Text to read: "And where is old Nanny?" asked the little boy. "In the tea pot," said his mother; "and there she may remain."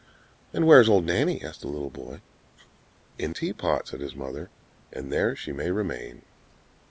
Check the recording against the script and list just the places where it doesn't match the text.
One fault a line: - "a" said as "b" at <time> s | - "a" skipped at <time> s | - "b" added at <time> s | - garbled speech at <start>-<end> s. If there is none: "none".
- "the" skipped at 3.3 s